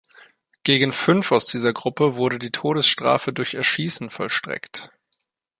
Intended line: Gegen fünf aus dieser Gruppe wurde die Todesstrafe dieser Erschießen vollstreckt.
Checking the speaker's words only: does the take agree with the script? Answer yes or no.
no